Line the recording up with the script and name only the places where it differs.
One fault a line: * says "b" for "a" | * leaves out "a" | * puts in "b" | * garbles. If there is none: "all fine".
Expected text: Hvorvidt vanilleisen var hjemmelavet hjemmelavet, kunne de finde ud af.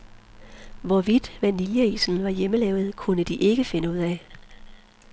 * leaves out "hjemmelavet"
* puts in "ikke"